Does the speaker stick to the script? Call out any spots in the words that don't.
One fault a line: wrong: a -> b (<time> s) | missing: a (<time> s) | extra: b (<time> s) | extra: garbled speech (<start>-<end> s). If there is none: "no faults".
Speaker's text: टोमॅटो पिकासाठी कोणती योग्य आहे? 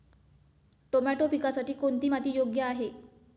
extra: माती (2.1 s)